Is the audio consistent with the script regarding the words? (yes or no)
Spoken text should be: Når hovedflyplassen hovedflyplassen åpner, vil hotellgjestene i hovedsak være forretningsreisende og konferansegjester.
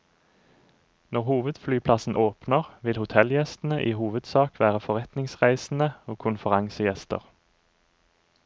no